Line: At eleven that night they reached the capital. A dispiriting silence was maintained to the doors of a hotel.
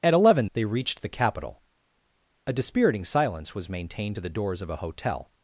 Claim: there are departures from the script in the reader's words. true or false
true